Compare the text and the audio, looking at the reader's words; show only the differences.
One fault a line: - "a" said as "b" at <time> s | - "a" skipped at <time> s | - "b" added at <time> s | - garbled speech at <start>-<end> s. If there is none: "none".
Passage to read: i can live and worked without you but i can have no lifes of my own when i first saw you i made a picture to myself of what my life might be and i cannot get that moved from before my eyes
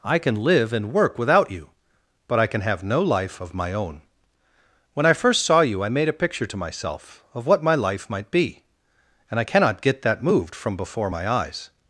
- "worked" said as "work" at 0.9 s
- "lifes" said as "life" at 3.0 s